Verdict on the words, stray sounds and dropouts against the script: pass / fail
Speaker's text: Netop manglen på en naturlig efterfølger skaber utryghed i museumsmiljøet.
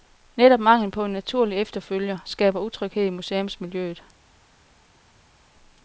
pass